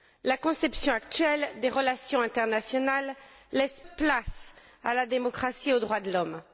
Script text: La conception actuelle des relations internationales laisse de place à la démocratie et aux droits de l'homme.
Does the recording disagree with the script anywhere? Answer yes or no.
no